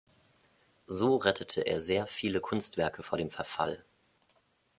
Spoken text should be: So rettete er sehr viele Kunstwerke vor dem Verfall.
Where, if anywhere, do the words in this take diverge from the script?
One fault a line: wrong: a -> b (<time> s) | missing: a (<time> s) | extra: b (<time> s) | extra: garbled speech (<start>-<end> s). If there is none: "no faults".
no faults